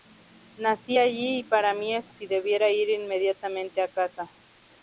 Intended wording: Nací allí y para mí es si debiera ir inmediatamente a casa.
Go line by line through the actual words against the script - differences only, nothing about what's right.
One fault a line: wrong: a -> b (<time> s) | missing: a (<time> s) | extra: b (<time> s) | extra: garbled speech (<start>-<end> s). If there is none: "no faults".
no faults